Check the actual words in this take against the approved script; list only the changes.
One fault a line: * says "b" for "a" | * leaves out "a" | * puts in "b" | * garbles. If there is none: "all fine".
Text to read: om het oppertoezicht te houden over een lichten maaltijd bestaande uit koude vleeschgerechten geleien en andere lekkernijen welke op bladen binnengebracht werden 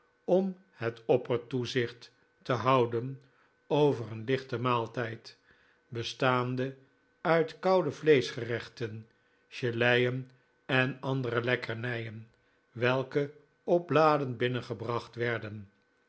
all fine